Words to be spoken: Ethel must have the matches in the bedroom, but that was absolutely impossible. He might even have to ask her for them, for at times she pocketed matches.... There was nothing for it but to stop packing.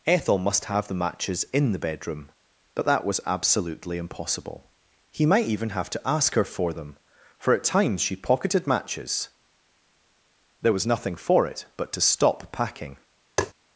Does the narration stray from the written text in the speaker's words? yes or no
no